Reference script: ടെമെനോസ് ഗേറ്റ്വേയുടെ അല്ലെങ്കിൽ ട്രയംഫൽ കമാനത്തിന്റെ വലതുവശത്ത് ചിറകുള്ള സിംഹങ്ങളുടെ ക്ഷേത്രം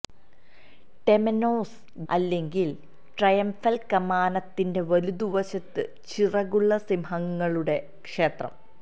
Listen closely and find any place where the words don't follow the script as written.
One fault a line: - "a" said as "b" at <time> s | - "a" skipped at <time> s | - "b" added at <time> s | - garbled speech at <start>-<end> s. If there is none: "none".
- "ഗേറ്റ്വേയുടെ" skipped at 1.8 s